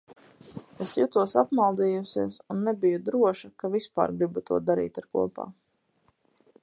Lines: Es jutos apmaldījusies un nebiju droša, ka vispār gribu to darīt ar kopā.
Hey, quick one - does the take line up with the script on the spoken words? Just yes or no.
yes